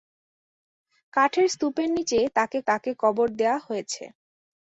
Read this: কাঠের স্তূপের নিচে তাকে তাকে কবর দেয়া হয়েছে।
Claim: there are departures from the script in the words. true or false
false